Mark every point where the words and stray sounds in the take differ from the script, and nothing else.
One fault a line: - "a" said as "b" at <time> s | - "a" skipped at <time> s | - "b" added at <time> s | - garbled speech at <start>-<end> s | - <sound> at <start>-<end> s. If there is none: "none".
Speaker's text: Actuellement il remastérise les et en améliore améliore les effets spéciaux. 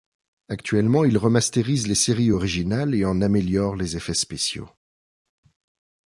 - "séries originales" added at 1.9 s
- "améliore" skipped at 3.8 s